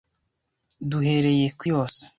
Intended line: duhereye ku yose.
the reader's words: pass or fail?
pass